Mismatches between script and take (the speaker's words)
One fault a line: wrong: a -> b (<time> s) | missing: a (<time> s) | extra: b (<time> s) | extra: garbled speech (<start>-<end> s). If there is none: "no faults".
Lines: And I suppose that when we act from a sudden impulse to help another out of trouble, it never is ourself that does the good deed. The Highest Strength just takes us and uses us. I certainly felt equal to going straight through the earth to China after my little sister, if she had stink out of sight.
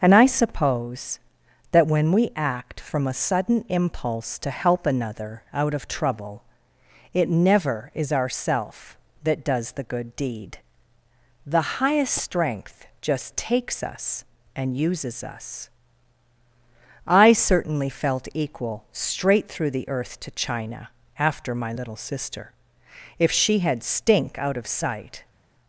missing: to going (18.9 s)